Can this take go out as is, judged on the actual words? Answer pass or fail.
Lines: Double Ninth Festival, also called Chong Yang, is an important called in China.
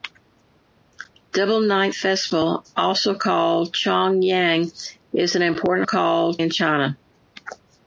pass